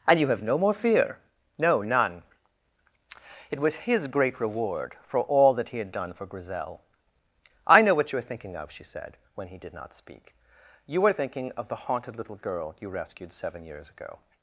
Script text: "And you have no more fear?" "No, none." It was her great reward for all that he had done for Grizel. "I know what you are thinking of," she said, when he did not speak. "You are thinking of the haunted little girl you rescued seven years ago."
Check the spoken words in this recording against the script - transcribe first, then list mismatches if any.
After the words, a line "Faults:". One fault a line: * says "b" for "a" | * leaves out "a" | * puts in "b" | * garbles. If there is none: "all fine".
"And you have no more fear?" "No, none." It was his great reward for all that he had done for Grizel. "I know what you are thinking of," she said, when he did not speak. "You are thinking of the haunted little girl you rescued seven years ago."
Faults:
* says "his" for "her"